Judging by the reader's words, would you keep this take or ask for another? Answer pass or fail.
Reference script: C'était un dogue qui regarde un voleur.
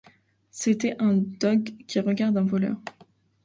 pass